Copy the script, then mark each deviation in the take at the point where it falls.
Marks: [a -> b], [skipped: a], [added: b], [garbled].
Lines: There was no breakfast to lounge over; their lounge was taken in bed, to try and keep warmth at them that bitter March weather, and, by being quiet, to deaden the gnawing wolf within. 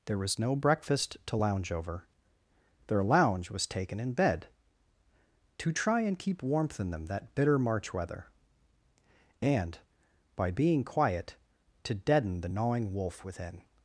There was no breakfast to lounge over; their lounge was taken in bed, to try and keep warmth [at -> in] them that bitter March weather, and, by being quiet, to deaden the gnawing wolf within.